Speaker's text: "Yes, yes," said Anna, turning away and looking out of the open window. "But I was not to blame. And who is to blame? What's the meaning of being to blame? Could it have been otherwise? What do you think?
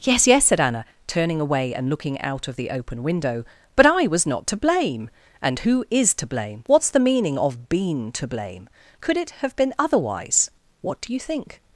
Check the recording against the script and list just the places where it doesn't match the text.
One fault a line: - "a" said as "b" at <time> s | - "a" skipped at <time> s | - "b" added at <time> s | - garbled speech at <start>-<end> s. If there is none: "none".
- "being" said as "been" at 7.7 s